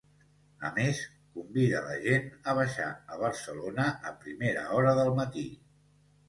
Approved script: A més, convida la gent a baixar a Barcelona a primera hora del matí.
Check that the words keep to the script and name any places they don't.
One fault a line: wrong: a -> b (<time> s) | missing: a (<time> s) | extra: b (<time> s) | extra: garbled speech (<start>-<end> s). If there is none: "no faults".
no faults